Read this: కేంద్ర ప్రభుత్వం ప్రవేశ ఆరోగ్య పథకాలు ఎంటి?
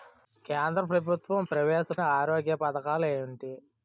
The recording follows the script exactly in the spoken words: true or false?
true